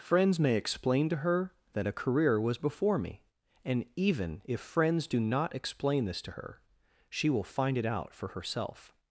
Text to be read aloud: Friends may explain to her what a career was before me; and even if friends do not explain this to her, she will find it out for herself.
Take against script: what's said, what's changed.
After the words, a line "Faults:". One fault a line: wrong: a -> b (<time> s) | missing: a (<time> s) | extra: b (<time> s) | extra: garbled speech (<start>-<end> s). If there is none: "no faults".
Friends may explain to her that a career was before me; and even if friends do not explain this to her, she will find it out for herself.
Faults:
wrong: what -> that (1.7 s)